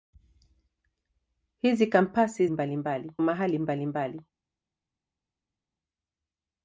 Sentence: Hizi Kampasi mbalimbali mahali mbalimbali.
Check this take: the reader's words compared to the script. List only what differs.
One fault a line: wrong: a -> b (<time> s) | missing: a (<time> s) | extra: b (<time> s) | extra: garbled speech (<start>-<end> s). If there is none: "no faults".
no faults